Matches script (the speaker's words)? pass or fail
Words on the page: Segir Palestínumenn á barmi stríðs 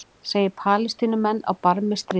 pass